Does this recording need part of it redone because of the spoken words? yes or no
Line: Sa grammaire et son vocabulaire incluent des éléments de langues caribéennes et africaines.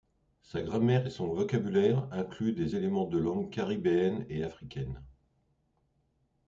no